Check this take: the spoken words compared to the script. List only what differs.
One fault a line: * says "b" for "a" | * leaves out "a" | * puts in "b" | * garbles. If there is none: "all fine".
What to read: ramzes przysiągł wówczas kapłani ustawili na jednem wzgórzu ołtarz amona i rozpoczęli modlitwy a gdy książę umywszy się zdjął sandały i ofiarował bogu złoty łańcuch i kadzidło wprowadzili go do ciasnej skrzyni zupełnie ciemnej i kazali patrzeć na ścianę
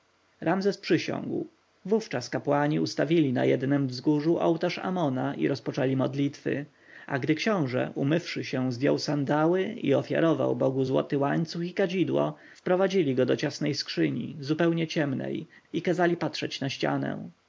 all fine